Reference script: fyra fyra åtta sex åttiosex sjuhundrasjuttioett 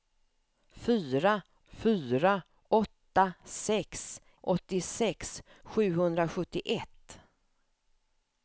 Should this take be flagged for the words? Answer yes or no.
no